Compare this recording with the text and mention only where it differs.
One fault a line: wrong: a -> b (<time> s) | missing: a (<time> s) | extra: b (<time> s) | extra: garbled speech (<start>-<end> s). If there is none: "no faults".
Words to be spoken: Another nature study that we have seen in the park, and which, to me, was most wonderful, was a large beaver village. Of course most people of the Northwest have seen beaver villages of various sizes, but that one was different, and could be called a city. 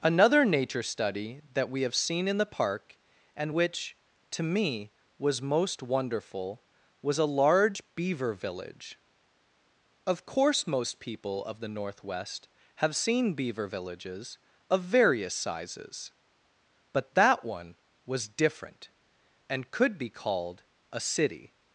no faults